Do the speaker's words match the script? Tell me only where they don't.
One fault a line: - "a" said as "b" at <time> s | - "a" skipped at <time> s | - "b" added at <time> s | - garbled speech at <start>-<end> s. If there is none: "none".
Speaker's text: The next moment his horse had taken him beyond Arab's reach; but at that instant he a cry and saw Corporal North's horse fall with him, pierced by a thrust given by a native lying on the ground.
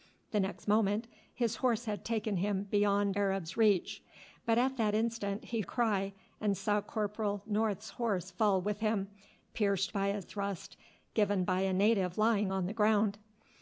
none